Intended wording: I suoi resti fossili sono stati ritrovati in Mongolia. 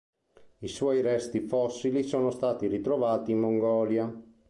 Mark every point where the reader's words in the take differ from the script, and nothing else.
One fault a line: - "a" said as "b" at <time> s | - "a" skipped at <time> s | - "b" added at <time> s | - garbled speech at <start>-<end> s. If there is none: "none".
none